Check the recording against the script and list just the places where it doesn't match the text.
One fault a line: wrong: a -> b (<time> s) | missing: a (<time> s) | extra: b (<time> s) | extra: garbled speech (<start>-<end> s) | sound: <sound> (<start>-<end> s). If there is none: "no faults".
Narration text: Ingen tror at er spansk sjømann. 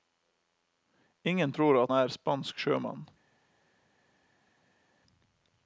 no faults